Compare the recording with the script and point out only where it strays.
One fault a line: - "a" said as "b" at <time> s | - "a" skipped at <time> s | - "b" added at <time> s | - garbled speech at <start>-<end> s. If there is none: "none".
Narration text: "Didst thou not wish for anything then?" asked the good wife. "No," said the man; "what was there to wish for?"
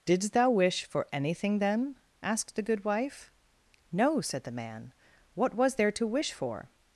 - "not" skipped at 0.5 s